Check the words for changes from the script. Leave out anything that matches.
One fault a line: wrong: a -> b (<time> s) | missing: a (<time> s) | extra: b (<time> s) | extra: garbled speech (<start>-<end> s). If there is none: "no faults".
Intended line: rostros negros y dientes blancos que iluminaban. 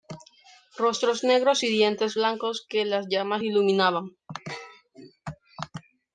extra: las llamas (2.9 s)